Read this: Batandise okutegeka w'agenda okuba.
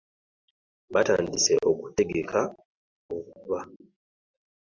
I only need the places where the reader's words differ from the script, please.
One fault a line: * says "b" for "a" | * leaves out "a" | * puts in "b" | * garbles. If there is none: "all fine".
* leaves out "w'agenda"